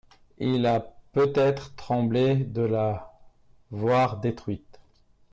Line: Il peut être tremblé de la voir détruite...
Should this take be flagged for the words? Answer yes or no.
yes